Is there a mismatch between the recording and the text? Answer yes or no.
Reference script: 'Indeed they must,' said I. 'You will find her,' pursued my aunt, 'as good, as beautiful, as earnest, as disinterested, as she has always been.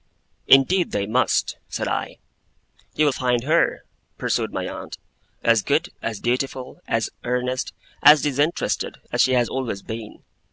no